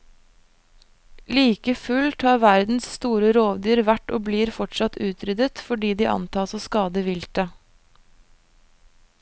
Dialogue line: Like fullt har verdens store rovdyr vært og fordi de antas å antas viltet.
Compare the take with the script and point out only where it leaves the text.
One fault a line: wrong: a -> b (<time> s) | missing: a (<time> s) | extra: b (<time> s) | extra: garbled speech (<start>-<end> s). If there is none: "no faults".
extra: blir fortsatt utryddet (4.3 s)
wrong: antas -> skade (6.6 s)